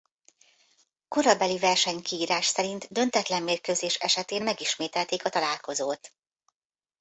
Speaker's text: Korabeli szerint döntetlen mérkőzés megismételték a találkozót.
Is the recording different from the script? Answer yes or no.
yes